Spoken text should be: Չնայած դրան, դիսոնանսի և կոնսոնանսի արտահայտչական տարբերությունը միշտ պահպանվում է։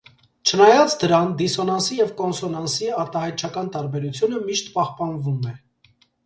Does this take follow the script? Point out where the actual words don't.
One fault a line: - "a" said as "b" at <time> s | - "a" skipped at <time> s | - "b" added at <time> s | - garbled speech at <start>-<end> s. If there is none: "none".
none